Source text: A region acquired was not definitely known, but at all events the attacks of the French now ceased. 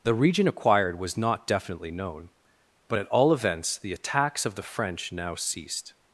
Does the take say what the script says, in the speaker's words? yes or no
no